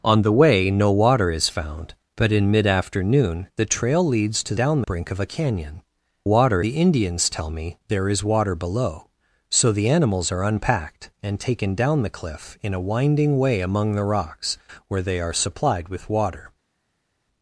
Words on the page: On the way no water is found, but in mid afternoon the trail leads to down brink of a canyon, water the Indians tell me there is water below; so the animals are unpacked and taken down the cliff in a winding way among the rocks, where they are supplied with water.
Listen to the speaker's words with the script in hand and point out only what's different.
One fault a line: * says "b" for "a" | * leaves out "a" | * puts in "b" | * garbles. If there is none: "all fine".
all fine